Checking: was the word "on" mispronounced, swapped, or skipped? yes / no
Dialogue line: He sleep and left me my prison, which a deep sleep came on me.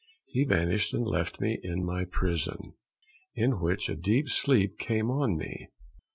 no